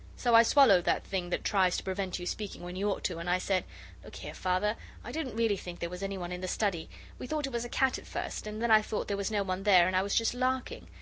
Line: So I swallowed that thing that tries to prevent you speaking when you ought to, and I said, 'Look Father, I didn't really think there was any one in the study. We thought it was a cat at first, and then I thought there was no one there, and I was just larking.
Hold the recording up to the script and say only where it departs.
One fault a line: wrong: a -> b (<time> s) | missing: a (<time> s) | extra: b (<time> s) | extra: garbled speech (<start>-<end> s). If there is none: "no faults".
extra: here (4.2 s)